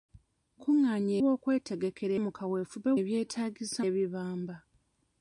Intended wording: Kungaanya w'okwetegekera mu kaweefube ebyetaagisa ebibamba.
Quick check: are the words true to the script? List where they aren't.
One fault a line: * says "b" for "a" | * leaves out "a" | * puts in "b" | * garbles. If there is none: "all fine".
all fine